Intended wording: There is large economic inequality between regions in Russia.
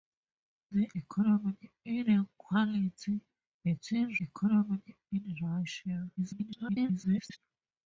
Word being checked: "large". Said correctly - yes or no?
no